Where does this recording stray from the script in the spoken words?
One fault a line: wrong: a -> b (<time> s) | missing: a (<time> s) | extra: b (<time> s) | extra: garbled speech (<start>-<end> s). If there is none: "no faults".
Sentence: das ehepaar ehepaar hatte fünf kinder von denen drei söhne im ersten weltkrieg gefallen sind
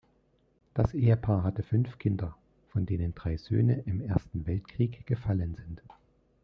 missing: ehepaar (1.4 s)